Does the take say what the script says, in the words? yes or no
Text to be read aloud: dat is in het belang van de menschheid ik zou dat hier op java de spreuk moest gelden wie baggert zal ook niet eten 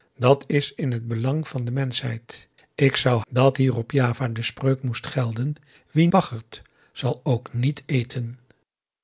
yes